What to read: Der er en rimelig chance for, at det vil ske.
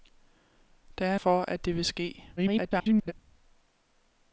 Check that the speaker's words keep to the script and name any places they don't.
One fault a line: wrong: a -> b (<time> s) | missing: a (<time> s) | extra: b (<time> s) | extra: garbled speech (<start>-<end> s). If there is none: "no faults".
missing: en rimelig chance (1.1 s)
extra: garbled speech (2.4-3.1 s)